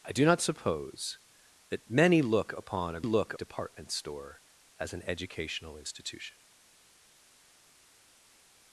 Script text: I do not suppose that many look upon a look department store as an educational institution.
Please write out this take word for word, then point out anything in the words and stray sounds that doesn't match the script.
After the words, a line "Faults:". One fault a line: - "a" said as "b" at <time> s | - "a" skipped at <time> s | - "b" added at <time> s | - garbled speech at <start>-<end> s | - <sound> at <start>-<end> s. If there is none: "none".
I do not suppose that many look upon a look department store as an educational institution.
Faults:
none